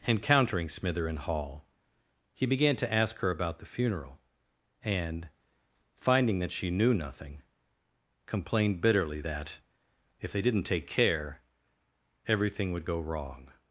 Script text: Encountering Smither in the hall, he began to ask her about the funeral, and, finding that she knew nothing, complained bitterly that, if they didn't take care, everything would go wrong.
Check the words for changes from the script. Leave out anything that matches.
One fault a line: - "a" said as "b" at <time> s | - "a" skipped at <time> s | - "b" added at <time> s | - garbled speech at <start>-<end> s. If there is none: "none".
- "the" skipped at 1.2 s